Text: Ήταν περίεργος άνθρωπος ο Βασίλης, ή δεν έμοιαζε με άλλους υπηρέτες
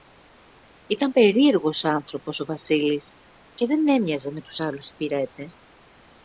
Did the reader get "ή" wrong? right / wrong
wrong